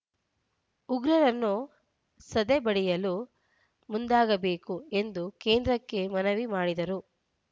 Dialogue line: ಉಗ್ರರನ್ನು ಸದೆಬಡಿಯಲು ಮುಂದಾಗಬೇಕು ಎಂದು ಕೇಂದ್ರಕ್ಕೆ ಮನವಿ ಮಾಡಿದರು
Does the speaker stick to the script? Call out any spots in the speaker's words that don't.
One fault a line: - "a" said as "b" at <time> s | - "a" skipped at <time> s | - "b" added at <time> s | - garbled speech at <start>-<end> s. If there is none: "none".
none